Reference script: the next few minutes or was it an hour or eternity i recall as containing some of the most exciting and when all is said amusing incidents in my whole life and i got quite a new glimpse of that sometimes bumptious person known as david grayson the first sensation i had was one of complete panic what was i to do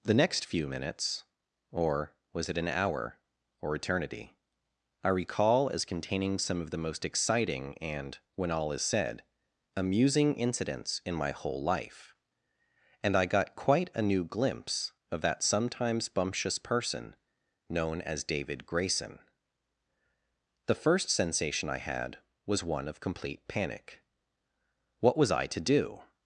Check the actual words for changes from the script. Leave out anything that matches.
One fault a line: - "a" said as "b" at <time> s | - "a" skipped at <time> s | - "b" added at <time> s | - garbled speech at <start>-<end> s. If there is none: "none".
none